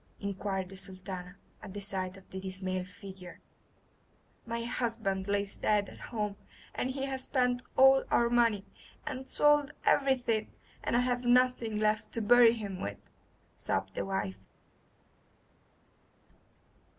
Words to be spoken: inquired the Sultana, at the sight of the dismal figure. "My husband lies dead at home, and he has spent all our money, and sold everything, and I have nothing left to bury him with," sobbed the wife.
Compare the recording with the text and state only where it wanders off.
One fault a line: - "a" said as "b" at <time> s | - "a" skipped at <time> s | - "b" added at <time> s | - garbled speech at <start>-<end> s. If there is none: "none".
none